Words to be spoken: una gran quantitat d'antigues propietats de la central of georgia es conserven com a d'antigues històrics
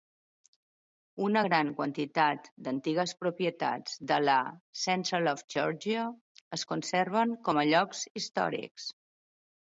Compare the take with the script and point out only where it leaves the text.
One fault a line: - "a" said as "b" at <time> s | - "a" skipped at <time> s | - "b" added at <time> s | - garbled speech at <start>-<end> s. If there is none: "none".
- "d'antigues" said as "llocs" at 7.7 s